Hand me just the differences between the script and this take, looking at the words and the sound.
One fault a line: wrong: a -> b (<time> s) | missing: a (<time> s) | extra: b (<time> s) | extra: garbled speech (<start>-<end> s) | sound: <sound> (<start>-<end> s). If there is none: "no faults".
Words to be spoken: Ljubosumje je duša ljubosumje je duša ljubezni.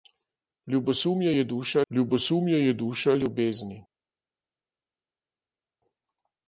no faults